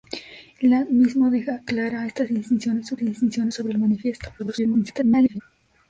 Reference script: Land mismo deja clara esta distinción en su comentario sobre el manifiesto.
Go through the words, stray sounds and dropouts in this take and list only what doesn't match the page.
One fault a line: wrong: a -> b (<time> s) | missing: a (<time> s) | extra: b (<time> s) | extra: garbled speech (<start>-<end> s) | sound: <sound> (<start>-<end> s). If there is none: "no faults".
wrong: comentario -> distinción (2.9 s)
extra: garbled speech (4.4-5.4 s)